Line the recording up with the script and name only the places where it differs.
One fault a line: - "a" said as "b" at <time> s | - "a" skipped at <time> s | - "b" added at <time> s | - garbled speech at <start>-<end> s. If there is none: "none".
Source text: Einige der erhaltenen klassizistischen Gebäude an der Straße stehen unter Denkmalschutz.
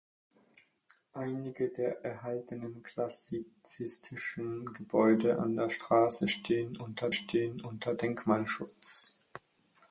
- "stehen unter" added at 7.1 s